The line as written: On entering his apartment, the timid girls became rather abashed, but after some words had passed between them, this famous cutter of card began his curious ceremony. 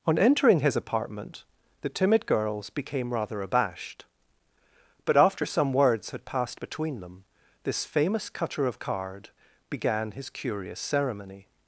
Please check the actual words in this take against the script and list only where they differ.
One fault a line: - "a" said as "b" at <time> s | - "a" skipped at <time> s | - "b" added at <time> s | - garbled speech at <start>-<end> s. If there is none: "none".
none